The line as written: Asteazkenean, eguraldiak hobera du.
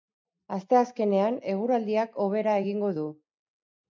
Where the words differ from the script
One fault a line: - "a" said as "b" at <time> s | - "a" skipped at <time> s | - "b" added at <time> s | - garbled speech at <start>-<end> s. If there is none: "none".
- "egingo" added at 2.6 s